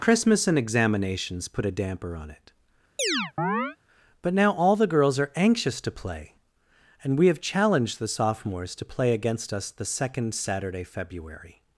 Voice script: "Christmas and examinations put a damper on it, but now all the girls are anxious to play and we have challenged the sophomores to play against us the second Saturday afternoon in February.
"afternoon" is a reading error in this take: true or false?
true